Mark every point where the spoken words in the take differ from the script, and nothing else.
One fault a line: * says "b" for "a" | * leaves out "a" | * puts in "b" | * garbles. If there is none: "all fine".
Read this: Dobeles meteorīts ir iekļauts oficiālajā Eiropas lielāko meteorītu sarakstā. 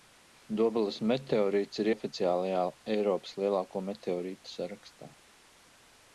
* leaves out "iekļauts"